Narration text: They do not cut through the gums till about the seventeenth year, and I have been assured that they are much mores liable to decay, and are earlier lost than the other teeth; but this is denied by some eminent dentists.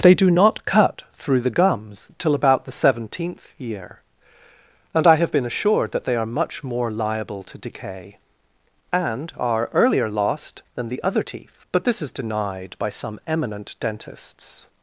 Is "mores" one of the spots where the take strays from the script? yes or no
yes